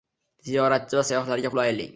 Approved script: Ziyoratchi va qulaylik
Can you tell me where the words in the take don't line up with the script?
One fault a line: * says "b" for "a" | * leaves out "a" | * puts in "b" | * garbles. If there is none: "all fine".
* puts in "sayyohlarga"